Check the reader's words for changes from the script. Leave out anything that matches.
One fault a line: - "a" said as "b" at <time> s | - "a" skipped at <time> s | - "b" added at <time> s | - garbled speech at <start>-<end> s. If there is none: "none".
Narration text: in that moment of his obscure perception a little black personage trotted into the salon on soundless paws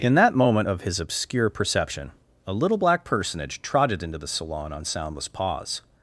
none